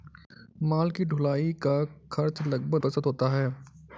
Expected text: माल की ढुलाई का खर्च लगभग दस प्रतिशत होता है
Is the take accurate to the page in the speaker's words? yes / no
no